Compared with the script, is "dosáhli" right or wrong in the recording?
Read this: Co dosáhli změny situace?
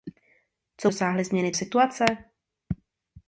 right